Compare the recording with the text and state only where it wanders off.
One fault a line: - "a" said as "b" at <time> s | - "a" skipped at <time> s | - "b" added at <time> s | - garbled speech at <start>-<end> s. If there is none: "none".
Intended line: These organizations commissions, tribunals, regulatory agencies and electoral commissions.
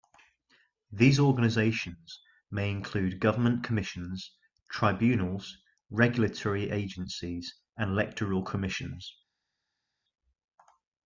- "may include government" added at 2.5 s